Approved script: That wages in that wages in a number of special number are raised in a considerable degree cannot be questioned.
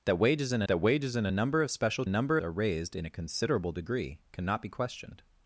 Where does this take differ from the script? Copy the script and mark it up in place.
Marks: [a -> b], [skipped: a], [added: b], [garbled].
That wages in that wages in a number of special number are raised in a considerable degree cannot be questioned.